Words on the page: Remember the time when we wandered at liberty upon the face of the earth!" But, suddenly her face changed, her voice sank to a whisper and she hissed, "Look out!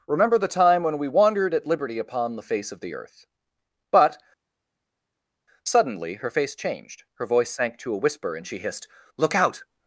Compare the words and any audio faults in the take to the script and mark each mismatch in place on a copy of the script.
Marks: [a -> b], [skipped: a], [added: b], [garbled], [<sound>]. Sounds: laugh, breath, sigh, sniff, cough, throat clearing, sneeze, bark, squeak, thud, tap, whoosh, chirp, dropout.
Remember the time when we wandered at liberty upon the face of the earth!" But, suddenly her face changed, her voice sank to a whisper and she hissed, "Look out!